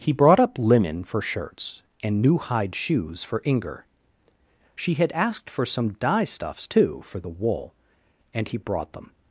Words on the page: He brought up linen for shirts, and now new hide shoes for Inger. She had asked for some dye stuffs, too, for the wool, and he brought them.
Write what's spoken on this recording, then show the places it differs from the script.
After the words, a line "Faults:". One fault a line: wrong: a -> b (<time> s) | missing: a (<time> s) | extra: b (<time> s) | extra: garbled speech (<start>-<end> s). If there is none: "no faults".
He brought up linen for shirts, and new hide shoes for Inger. She had asked for some dye stuffs, too, for the wool, and he brought them.
Faults:
missing: now (2.2 s)